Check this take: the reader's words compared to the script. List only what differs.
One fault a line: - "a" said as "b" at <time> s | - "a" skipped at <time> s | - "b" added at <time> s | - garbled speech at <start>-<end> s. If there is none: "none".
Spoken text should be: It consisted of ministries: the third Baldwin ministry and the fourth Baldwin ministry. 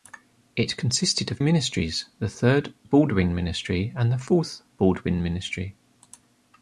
none